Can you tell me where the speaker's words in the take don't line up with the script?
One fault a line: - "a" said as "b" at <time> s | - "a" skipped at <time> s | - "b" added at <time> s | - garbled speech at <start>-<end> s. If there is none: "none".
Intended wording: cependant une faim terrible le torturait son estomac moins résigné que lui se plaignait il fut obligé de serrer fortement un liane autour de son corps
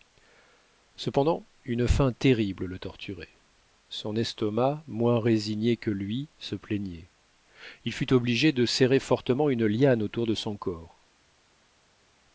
- "un" said as "une" at 9.5 s